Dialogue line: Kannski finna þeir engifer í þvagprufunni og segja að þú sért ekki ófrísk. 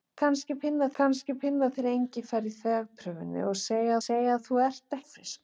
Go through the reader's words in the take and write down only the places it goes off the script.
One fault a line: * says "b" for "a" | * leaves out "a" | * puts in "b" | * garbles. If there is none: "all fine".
* puts in "kannski finna"
* puts in "segja"
* leaves out "ekki"